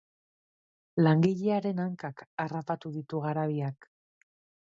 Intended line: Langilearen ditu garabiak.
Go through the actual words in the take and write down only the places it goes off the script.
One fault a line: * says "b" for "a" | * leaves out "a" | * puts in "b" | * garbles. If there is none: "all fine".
* puts in "hankak harrapatu"